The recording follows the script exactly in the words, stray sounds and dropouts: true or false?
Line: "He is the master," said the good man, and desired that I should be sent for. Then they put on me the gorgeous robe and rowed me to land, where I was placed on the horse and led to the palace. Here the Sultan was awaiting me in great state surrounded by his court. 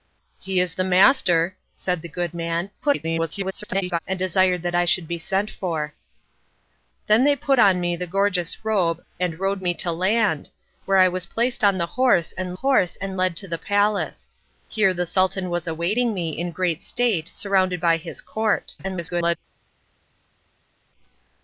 false